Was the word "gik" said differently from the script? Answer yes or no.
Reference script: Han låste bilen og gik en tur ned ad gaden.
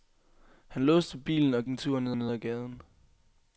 yes